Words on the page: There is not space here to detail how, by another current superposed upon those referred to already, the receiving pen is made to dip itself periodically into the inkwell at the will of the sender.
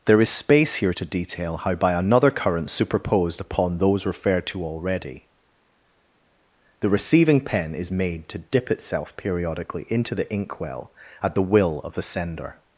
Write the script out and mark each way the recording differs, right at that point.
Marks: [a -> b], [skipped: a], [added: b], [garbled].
There is [skipped: not] space here to detail how, by another current superposed upon those referred to already, the receiving pen is made to dip itself periodically into the inkwell at the will of the sender.